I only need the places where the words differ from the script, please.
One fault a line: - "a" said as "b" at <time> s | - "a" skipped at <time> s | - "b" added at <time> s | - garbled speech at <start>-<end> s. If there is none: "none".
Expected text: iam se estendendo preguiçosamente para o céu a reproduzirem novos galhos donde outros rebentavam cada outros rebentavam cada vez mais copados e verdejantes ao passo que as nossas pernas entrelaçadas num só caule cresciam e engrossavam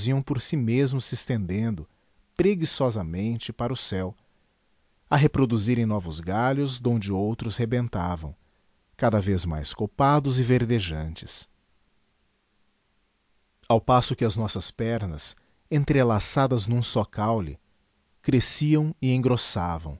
- "por si mesmos" added at 0.2 s
- "outros rebentavam cada" skipped at 9.2 s